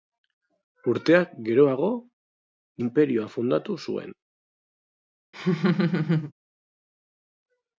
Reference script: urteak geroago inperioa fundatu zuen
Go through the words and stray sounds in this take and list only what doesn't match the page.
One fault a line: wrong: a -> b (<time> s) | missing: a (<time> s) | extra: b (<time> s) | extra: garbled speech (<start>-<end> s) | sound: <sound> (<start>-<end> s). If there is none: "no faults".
sound: laugh (5.3-6.3 s)